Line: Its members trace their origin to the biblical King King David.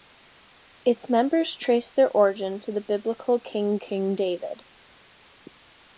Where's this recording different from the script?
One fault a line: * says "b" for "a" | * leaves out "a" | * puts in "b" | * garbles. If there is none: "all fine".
all fine